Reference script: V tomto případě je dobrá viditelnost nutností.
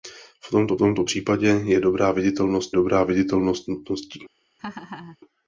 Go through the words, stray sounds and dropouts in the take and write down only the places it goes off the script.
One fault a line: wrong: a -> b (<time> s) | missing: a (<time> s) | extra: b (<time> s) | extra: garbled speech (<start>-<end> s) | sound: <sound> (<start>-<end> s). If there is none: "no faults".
extra: tomto (0.8 s)
extra: dobrá viditelnost (2.7 s)
sound: laugh (4.6-5.2 s)